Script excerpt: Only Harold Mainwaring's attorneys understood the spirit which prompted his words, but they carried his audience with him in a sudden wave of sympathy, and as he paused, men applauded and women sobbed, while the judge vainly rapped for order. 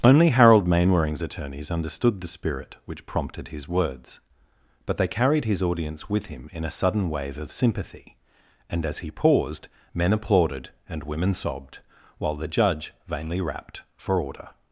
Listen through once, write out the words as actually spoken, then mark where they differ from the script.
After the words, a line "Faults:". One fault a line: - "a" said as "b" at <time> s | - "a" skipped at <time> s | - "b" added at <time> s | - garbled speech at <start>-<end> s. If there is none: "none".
Only Harold Mainwaring's attorneys understood the spirit which prompted his words, but they carried his audience with him in a sudden wave of sympathy, and as he paused, men applauded and women sobbed, while the judge vainly rapped for order.
Faults:
none